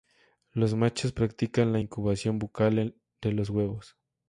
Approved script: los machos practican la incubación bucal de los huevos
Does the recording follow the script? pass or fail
pass